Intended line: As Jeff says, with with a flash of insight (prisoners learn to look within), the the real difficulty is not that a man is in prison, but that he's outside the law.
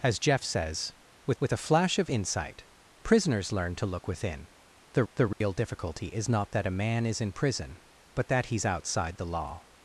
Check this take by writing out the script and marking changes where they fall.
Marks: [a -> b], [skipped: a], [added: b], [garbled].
As Jeff says, with with a flash of insight (prisoners learn to look within), the the real difficulty is not that a man is in prison, but that he's outside the law.